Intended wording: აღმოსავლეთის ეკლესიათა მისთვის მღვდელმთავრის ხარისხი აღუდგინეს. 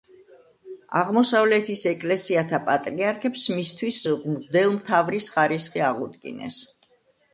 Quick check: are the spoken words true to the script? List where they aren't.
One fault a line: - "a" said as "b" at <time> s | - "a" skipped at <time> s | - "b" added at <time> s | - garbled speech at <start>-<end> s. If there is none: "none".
- "პატრიარქებს" added at 2.7 s